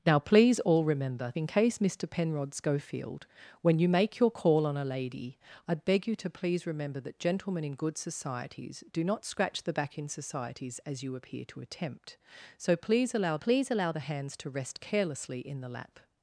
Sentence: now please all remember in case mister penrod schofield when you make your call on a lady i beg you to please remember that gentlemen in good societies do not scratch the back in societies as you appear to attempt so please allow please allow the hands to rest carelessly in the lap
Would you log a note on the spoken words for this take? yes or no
no